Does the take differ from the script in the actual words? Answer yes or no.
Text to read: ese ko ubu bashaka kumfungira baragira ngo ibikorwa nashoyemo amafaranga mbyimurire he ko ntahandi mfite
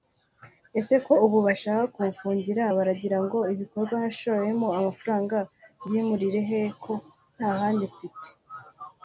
no